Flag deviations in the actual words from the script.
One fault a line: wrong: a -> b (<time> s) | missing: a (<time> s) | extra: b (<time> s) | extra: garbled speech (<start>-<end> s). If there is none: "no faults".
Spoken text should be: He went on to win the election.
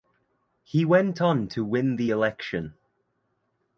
no faults